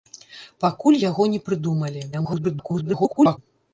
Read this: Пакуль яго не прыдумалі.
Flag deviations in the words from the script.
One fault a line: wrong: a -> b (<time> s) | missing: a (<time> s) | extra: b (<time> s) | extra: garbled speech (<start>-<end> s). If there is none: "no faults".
extra: garbled speech (2.1-3.4 s)